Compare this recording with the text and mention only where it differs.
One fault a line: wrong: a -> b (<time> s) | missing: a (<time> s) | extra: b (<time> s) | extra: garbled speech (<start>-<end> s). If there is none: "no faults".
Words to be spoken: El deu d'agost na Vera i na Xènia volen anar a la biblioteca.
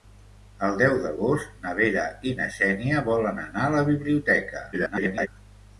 extra: garbled speech (4.7-5.3 s)